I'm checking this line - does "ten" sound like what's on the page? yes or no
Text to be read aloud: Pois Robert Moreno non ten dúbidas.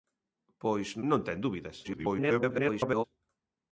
yes